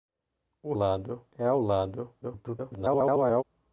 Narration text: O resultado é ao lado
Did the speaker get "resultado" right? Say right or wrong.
wrong